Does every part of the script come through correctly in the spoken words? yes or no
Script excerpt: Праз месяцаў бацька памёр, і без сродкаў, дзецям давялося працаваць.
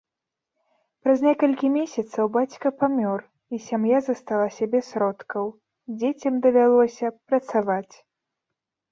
no